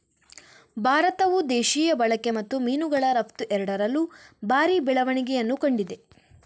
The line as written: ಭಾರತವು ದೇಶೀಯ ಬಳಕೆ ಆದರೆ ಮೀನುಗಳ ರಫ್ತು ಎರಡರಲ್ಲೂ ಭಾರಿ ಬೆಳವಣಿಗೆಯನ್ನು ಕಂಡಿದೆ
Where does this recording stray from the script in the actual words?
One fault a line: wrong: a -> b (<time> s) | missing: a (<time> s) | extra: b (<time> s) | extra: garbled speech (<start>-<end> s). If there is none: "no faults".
wrong: ಆದರೆ -> ಮತ್ತು (2.3 s)